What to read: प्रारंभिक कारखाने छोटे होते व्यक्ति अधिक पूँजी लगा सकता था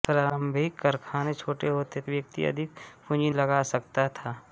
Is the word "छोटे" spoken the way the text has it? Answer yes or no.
yes